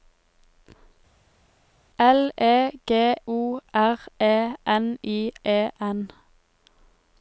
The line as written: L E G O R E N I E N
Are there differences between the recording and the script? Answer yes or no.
no